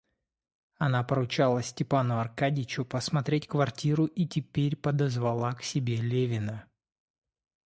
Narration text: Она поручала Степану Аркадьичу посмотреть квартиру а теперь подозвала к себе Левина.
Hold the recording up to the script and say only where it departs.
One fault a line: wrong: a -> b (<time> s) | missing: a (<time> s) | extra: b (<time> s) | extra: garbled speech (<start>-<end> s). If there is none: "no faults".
wrong: а -> и (4.0 s)